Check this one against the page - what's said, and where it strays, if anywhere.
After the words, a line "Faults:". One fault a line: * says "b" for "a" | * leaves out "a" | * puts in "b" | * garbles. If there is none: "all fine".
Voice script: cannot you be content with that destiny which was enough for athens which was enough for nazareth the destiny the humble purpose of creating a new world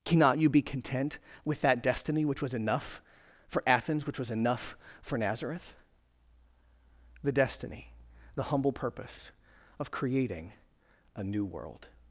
cannot you be content with that destiny which was enough for athens which was enough for nazareth the destiny the humble purpose of creating a new world
Faults:
all fine